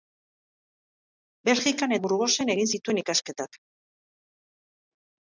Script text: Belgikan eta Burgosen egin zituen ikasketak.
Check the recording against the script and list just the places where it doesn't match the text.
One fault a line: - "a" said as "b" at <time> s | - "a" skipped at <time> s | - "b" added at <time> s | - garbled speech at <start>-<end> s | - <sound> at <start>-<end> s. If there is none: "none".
- "eta" skipped at 1.9 s